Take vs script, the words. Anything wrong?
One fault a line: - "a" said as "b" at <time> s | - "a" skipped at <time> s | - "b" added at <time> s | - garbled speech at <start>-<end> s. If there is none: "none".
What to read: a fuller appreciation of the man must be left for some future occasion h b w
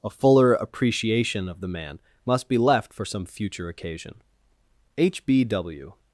none